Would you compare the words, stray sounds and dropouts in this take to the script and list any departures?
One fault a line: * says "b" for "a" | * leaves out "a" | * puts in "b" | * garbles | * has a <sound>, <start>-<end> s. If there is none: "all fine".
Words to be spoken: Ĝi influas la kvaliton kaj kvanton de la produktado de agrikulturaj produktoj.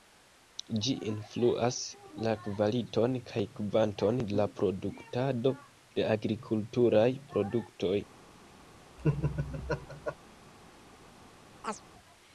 * has a laugh, 9.0-10.2 s
* has a chirp, 11.6-11.8 s